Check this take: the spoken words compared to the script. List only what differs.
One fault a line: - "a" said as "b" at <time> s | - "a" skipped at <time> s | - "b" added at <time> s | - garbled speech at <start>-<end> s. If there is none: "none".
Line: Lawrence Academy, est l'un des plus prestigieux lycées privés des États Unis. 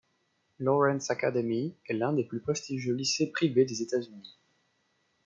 none